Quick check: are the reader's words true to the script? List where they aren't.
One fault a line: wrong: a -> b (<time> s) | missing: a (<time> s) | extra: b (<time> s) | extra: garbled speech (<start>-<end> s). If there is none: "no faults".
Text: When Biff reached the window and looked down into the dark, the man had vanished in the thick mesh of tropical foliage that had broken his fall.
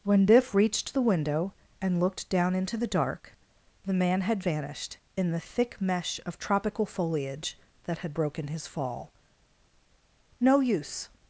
extra: No use (10.4 s)